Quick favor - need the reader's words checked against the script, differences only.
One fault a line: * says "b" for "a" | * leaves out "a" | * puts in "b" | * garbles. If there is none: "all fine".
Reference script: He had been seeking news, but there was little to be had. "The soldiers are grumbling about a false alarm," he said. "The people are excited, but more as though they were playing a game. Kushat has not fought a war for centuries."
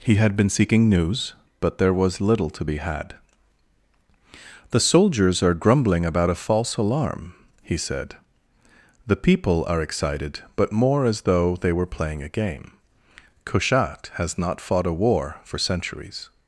all fine